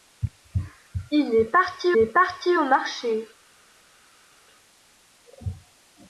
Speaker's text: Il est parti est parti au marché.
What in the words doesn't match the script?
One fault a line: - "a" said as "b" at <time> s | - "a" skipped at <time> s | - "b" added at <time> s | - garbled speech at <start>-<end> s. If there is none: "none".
none